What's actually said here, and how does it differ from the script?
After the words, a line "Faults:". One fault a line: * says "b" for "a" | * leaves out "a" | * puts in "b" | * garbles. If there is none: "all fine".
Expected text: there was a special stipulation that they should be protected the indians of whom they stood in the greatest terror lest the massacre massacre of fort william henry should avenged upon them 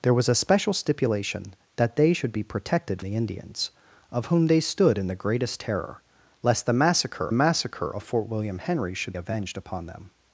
there was a special stipulation that they should be protected the indians of whom they stood in the greatest terror lest the massacre massacre of fort william henry should avenged upon them
Faults:
all fine